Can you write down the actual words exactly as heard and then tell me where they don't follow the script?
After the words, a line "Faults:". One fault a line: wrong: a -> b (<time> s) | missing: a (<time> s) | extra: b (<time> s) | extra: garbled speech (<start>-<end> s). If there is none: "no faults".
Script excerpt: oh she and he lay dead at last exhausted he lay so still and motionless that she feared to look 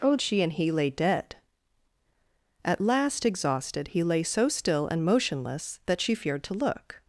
oh she and he lay dead at last exhausted he lay so still and motionless that she feared to look
Faults:
no faults